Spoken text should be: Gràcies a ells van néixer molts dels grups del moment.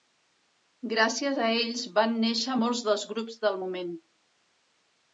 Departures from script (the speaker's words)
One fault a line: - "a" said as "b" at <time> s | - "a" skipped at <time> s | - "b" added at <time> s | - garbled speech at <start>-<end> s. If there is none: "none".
none